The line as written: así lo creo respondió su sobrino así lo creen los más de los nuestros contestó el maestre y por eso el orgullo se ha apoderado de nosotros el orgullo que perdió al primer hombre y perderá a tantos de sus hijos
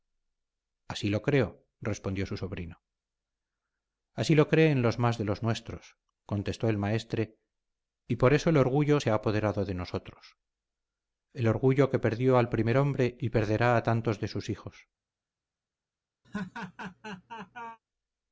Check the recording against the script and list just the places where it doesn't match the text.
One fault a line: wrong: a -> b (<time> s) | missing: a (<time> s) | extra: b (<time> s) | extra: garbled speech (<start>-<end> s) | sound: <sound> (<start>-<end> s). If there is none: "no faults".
sound: laugh (16.2-17.8 s)